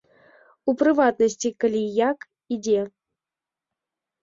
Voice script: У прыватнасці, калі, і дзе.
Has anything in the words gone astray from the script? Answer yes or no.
yes